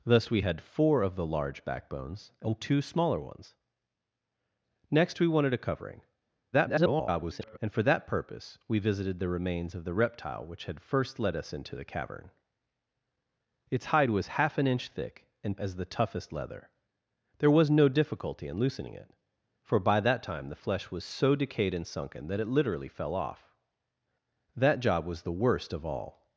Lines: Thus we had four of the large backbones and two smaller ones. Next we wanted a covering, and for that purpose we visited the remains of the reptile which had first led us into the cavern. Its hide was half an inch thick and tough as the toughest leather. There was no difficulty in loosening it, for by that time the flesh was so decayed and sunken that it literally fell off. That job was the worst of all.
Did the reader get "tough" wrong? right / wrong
wrong